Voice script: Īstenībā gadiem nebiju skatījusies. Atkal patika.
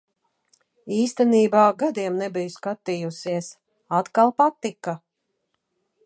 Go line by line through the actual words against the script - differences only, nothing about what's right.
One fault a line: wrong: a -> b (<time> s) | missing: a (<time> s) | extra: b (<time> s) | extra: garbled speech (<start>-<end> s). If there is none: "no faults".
no faults